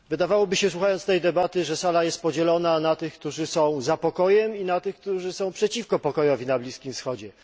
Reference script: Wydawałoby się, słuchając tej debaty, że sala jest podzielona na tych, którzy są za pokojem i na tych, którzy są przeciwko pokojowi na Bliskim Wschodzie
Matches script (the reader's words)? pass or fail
pass